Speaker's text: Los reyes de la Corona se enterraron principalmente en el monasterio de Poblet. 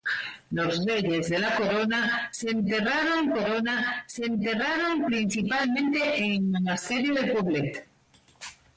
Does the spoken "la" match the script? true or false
true